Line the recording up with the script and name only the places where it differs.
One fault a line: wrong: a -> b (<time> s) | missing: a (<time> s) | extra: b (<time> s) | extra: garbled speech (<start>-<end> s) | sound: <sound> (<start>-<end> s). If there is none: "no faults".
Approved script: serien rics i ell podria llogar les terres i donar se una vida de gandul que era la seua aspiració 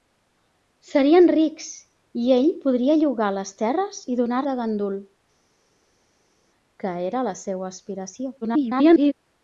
missing: se una vida (4.4 s)
extra: garbled speech (8.4-9.1 s)